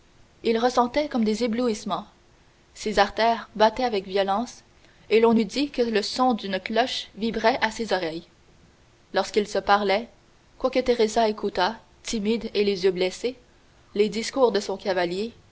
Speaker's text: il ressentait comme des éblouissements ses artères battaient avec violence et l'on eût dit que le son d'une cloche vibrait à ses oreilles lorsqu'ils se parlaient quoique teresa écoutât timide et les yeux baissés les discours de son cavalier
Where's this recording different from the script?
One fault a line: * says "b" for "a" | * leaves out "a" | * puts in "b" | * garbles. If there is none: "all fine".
all fine